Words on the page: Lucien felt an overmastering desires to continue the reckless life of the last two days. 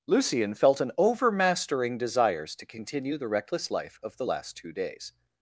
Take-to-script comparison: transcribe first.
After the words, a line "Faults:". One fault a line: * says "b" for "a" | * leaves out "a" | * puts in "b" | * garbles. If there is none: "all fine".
Lucien felt an overmastering desires to continue the reckless life of the last two days.
Faults:
all fine